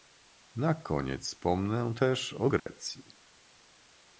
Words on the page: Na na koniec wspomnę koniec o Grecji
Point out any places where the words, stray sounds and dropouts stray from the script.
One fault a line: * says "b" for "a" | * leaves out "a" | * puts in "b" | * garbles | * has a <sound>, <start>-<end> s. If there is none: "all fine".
* leaves out "na"
* says "też" for "koniec"
* has a dropout, 2.6-2.7 s